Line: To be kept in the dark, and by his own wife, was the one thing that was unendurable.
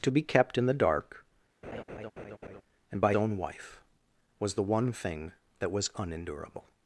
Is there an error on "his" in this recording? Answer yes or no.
yes